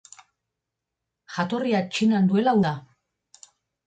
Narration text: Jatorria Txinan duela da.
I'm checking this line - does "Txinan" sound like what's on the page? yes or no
yes